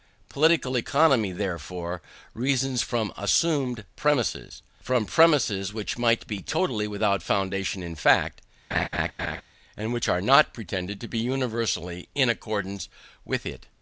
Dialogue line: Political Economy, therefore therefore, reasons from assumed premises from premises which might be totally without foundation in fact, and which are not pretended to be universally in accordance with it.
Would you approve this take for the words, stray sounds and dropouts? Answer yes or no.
no